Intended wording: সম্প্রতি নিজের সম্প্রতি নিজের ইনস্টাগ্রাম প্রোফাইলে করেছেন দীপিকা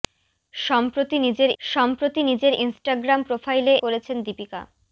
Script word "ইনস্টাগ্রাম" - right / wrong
right